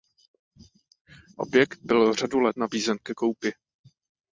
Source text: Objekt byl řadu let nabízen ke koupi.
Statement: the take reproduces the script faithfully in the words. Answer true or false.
true